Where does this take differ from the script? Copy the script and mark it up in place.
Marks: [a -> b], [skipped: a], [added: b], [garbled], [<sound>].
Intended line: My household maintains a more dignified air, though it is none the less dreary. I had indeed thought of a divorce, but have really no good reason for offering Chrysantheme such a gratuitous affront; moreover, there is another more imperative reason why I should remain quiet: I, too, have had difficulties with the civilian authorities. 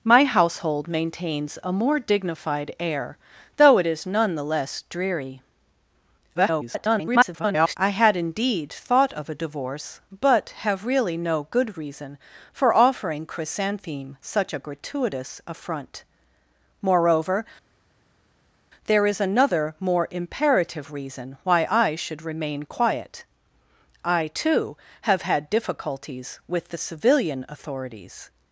My household maintains a more dignified air, though it is none the less dreary. [garbled] I had indeed thought of a divorce, but have really no good reason for offering Chrysantheme such a gratuitous affront; moreover, there is another more imperative reason why I should remain quiet: I, too, have had difficulties with the civilian authorities.